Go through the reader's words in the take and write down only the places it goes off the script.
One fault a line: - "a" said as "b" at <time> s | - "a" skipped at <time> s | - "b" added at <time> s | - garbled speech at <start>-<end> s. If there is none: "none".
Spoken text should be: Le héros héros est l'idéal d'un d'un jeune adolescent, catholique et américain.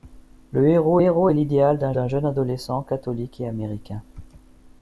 none